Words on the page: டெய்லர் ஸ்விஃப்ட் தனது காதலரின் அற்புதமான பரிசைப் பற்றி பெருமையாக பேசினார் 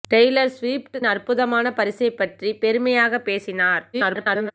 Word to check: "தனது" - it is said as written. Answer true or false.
false